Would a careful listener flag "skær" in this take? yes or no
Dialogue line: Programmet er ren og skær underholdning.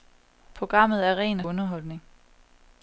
yes